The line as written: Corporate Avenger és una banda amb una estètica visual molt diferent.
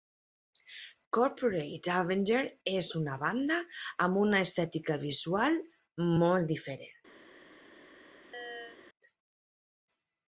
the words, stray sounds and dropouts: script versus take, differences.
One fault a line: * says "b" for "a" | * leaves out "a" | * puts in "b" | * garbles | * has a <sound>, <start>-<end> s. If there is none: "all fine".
* has a chirp, 8.3-8.8 s